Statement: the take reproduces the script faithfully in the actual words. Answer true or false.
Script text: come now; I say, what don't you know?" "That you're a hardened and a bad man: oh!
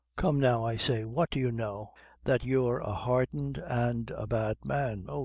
false